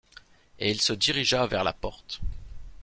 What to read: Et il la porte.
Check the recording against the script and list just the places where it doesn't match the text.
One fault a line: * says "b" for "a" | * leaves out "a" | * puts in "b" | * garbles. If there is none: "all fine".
* puts in "se dirigea vers"